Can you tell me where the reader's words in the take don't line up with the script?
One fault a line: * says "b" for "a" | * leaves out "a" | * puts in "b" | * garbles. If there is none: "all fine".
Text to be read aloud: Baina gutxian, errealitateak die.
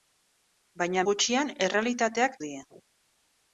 all fine